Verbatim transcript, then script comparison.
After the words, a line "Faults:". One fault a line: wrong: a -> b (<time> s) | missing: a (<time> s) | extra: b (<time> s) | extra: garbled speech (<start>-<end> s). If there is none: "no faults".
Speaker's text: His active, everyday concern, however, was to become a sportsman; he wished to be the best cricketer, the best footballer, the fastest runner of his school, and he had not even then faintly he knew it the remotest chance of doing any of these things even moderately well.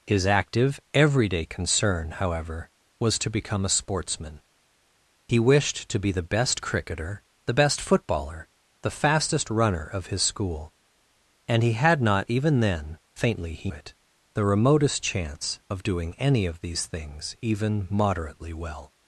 His active, everyday concern, however, was to become a sportsman; he wished to be the best cricketer, the best footballer, the fastest runner of his school, and he had not even then faintly he it the remotest chance of doing any of these things even moderately well.
Faults:
missing: knew (13.7 s)